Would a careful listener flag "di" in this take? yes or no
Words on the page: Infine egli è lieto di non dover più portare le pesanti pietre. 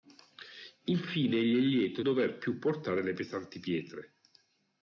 yes